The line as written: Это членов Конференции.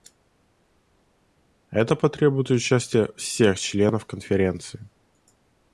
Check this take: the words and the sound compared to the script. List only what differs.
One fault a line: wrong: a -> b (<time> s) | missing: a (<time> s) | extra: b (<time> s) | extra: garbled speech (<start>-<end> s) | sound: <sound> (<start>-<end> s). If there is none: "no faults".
extra: потребует участия всех (2.0 s)